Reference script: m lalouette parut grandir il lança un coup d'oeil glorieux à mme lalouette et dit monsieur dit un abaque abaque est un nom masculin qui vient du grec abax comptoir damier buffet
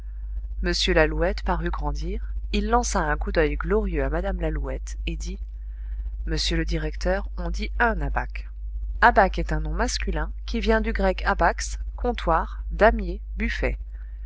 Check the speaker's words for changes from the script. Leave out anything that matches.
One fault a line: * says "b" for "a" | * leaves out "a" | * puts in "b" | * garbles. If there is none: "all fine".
* puts in "le directeur on"